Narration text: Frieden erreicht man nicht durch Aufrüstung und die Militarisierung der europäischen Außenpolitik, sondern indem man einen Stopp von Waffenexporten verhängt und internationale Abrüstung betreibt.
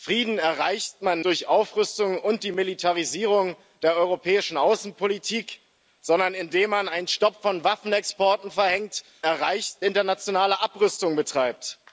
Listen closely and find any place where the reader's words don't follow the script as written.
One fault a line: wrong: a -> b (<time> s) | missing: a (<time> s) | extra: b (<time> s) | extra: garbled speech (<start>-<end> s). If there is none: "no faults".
missing: nicht (1.2 s)
wrong: und -> erreicht (9.2 s)